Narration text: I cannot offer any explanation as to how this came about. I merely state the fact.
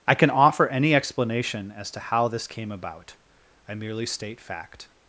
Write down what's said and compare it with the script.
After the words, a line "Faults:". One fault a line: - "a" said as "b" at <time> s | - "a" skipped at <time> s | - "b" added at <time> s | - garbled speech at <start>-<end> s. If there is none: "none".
I can offer any explanation as to how this came about. I merely state fact.
Faults:
- "cannot" said as "can" at 0.1 s
- "the" skipped at 4.4 s